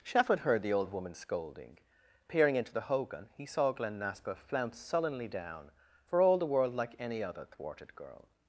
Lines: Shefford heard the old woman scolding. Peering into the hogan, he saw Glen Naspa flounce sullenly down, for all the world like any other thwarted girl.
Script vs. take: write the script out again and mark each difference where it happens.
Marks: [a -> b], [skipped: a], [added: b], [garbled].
Shefford heard the old woman scolding. Peering into the hogan, he saw Glen Naspa flounce sullenly down, for all the world like any other thwarted girl.